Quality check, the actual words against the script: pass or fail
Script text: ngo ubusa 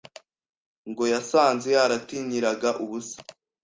fail